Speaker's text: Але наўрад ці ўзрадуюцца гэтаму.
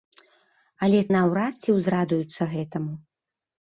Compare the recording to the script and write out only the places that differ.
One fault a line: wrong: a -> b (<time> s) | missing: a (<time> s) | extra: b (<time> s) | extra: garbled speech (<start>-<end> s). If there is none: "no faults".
no faults